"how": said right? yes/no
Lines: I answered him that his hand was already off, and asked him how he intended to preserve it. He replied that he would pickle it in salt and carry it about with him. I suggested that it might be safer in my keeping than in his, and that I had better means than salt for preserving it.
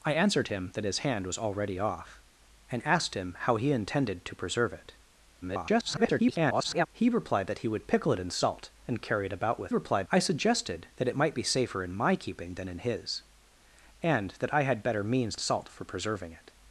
yes